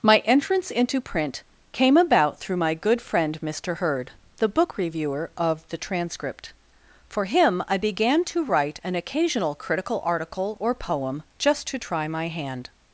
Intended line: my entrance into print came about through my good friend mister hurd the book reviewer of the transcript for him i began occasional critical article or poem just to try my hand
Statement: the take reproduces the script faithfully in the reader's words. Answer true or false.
false